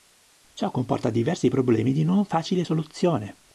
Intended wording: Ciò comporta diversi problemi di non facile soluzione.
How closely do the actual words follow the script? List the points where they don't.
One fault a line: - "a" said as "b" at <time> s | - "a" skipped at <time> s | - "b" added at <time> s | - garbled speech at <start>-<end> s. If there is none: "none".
none